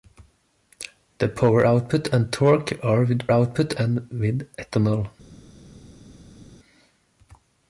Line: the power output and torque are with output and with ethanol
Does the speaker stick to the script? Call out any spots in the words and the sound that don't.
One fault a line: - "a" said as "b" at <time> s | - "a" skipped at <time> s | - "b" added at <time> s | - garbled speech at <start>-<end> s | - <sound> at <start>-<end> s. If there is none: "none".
none